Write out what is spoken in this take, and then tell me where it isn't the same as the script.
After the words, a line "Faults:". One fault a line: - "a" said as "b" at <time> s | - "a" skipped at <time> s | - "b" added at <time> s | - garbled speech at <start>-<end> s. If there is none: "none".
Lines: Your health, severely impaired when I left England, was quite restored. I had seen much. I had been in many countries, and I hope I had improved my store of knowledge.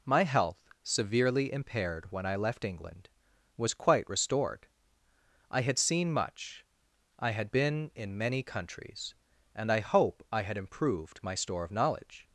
My health, severely impaired when I left England, was quite restored. I had seen much. I had been in many countries, and I hope I had improved my store of knowledge.
Faults:
- "Your" said as "My" at 0.1 s